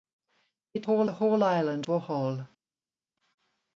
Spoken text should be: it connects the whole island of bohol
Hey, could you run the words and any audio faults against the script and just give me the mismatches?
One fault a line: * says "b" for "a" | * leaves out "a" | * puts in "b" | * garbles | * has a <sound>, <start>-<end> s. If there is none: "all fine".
* says "whole" for "connects"
* leaves out "of"